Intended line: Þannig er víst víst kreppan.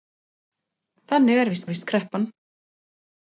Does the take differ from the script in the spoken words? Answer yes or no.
no